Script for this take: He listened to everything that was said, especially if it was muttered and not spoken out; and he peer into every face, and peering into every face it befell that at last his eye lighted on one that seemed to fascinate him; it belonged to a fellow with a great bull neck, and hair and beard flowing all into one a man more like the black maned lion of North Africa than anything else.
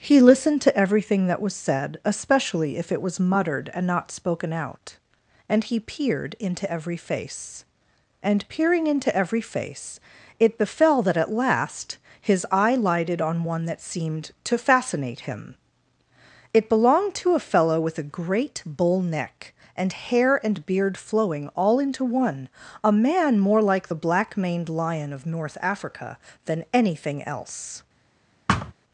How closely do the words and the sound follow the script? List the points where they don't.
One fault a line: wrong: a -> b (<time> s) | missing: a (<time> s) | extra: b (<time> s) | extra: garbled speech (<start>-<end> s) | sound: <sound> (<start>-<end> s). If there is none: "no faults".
wrong: peer -> peered (5.8 s)
sound: thud (28.5-28.7 s)